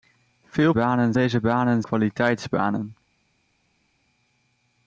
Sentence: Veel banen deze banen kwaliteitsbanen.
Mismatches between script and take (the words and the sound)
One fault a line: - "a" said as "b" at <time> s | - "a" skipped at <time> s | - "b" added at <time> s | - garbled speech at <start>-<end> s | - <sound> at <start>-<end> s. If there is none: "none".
none